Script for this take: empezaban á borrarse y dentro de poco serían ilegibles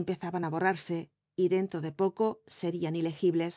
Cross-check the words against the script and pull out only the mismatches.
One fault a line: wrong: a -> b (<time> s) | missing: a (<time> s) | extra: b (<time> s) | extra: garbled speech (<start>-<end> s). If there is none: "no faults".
no faults